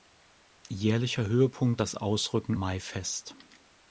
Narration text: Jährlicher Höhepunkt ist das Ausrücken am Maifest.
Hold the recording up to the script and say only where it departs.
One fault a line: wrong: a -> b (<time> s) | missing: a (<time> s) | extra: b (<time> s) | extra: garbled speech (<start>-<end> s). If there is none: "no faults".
missing: ist (1.8 s)
missing: am (2.6 s)